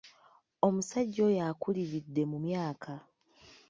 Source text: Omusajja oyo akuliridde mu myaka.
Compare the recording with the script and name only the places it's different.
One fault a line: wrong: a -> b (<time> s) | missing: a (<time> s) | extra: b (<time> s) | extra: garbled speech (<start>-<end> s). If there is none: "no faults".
no faults